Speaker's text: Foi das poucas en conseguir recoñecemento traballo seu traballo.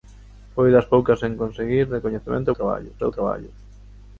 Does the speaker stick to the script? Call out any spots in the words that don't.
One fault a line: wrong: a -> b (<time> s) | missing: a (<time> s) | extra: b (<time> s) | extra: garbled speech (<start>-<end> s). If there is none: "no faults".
no faults